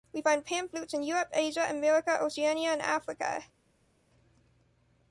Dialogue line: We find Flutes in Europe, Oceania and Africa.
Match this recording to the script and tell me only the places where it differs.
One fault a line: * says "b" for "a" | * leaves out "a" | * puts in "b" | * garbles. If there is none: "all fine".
* puts in "Pan"
* puts in "Asia America"